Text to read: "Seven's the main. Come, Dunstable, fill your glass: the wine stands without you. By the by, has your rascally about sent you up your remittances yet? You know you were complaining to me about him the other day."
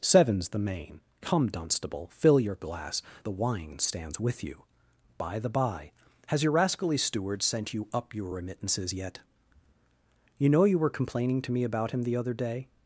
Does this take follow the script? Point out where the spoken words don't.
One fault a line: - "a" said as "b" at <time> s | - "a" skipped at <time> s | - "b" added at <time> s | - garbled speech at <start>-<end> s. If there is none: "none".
- "without" said as "with" at 4.2 s
- "about" said as "steward" at 7.0 s